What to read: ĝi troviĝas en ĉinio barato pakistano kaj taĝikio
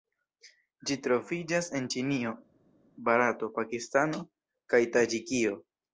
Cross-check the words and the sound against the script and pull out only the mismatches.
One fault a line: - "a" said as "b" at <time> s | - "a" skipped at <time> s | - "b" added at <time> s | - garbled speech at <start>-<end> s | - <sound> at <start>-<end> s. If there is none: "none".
none